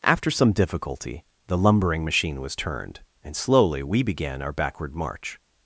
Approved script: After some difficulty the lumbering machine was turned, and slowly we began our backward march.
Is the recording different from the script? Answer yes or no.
no